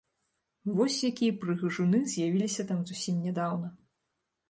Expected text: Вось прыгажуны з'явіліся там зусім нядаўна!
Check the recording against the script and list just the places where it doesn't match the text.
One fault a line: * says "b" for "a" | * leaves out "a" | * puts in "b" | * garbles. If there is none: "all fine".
* puts in "якія"